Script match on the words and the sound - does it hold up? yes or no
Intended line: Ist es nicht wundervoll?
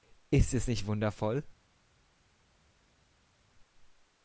yes